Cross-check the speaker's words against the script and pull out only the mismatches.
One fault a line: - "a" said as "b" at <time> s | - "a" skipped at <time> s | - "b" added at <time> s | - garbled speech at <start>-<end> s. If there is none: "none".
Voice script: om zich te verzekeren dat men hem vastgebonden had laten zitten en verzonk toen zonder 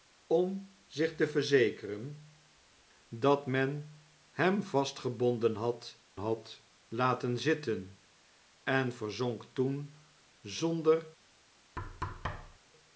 - "had" added at 6.2 s